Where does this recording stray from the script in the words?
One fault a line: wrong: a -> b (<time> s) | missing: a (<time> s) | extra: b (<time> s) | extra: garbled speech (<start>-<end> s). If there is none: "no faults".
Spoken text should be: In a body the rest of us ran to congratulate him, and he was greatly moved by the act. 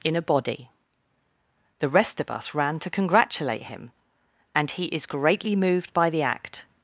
wrong: was -> is (4.8 s)